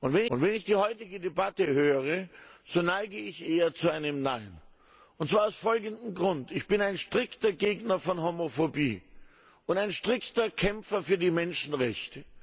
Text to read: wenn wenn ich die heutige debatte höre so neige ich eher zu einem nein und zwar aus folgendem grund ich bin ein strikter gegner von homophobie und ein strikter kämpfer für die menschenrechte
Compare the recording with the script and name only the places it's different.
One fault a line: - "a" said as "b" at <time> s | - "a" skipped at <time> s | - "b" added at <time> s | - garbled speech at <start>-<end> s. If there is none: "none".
none